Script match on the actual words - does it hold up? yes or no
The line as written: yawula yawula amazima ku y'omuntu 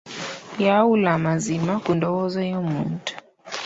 no